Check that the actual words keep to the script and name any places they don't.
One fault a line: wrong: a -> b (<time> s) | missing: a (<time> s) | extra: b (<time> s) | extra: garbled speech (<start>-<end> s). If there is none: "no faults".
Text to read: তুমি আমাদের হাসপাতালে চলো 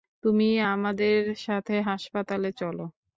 extra: সাথে (1.5 s)